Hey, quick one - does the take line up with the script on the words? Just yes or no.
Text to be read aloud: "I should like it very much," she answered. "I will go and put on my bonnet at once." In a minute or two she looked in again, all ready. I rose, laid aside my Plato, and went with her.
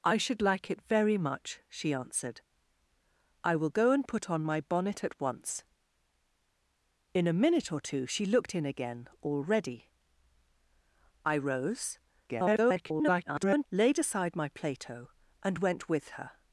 no